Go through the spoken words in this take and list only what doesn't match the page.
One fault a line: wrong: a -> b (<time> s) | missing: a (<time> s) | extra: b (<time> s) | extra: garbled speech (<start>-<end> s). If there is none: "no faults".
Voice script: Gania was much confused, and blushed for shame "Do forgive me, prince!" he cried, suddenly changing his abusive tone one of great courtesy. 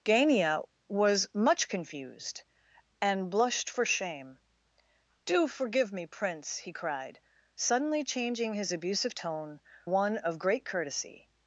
no faults